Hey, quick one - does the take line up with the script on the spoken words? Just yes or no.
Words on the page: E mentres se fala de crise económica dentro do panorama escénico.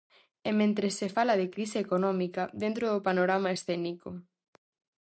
yes